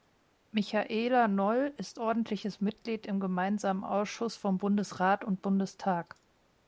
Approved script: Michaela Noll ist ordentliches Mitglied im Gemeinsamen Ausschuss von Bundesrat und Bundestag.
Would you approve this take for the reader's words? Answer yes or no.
yes